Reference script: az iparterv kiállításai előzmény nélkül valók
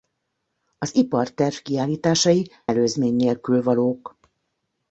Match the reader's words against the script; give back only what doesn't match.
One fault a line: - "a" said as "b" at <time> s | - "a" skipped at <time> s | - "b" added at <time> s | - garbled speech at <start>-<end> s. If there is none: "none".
none